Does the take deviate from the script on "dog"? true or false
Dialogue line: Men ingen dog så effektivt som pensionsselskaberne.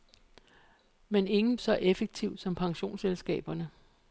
true